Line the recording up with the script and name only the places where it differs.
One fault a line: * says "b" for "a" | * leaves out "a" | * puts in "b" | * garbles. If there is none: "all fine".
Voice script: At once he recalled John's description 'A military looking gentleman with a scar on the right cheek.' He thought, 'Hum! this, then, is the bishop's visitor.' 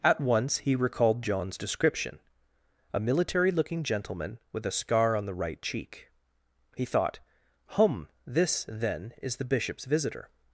all fine